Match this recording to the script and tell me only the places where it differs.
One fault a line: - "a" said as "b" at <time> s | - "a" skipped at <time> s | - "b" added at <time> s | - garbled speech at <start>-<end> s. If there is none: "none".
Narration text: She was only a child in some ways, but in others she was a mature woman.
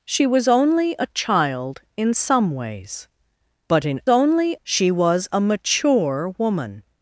- "others" said as "only" at 4.1 s